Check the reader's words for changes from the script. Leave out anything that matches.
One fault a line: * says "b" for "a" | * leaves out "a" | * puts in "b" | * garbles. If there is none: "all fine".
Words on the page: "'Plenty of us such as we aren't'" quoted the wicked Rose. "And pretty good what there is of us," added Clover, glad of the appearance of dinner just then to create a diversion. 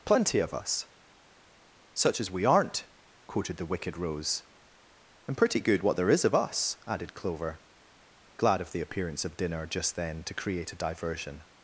all fine